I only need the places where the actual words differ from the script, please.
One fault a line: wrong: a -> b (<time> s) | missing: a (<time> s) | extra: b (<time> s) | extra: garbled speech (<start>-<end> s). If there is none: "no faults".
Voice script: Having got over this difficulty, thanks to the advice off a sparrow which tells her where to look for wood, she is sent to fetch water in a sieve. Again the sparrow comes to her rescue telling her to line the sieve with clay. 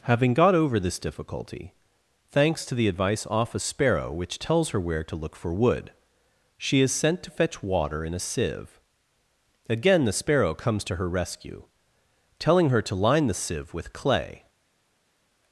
no faults